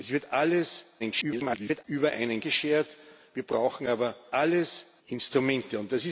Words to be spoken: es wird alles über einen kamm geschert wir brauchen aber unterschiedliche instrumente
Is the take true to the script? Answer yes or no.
no